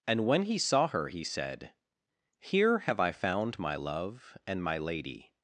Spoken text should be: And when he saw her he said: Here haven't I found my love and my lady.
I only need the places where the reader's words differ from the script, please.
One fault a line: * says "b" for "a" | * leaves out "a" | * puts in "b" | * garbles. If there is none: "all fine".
* says "have" for "haven't"